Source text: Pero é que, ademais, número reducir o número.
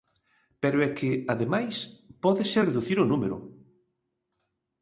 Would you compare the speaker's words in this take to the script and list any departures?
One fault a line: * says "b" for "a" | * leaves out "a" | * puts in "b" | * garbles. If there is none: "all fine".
* says "pódese" for "número"